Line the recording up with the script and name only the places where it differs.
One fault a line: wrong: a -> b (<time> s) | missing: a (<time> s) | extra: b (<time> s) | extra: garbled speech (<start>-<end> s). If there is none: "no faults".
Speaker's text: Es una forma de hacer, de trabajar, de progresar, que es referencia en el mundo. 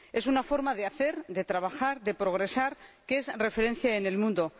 no faults